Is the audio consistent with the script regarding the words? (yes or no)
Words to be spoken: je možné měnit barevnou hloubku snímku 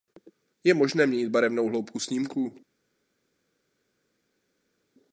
yes